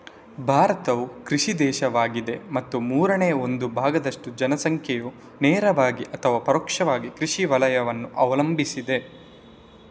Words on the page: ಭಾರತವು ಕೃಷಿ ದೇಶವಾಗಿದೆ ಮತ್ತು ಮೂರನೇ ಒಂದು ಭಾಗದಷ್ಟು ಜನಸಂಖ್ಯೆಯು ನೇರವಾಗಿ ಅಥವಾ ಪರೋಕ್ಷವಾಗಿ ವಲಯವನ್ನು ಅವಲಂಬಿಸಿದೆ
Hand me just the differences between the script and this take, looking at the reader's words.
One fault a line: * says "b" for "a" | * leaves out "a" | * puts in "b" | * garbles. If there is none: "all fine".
* puts in "ಕೃಷಿ"